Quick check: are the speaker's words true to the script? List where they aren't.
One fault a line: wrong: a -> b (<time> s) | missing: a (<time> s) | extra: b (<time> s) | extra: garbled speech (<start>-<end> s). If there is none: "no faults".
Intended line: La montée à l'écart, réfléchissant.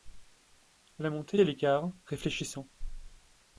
no faults